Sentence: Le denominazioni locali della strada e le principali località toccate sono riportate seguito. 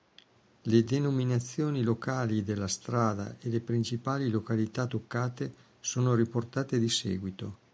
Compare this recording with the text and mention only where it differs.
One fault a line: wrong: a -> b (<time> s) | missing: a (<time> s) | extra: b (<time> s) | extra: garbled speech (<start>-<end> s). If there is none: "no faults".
extra: di (6.8 s)